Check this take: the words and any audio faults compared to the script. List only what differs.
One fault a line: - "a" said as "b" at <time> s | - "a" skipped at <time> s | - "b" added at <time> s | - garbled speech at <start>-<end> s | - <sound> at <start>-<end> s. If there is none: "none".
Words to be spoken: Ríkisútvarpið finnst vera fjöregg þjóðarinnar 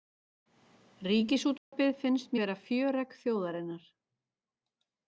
- dropout at 1.6-1.7 s